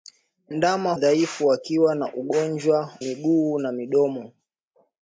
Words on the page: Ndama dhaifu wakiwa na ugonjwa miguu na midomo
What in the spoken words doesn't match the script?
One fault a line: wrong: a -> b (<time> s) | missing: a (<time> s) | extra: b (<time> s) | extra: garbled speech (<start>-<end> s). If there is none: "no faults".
no faults